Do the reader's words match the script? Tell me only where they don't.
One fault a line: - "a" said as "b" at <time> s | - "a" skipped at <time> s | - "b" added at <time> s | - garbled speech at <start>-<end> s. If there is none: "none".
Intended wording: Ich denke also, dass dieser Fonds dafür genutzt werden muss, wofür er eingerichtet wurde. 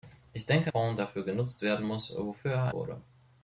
- "also dass dieser" skipped at 0.7 s
- "eingerichtet" skipped at 2.7 s